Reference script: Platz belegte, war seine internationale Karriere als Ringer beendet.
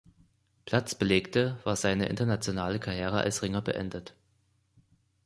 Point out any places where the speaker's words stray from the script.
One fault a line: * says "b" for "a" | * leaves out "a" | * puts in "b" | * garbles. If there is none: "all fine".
all fine